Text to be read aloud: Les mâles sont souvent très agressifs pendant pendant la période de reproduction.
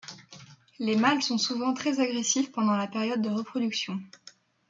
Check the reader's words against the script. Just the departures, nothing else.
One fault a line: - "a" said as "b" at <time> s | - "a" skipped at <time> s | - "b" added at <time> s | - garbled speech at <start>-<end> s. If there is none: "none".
- "pendant" skipped at 2.8 s